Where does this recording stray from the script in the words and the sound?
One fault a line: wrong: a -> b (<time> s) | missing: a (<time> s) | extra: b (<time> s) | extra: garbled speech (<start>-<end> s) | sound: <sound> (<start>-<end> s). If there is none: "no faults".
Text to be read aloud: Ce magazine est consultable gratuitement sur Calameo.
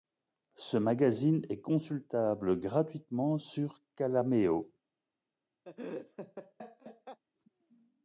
sound: laugh (5.6-7.2 s)